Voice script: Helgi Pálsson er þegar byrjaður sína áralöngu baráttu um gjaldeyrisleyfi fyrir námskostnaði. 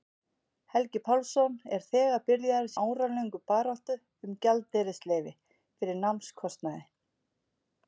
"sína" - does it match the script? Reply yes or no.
no